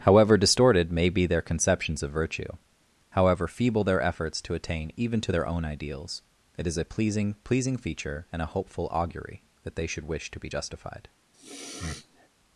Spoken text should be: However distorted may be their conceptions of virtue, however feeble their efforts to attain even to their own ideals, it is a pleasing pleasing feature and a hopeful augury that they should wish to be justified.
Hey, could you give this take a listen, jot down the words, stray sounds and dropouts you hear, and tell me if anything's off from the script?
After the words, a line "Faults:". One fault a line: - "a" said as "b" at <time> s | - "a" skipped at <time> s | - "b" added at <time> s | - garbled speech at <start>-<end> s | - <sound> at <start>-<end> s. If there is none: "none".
However distorted may be their conceptions of virtue, however feeble their efforts to attain even to their own ideals, it is a pleasing pleasing feature and a hopeful augury that they should wish to be justified.
Faults:
- sniff at 11.3-12.3 s